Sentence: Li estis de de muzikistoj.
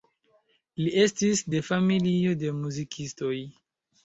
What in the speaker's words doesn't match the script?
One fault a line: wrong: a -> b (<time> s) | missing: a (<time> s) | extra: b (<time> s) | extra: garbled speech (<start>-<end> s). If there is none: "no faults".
extra: familio (1.7 s)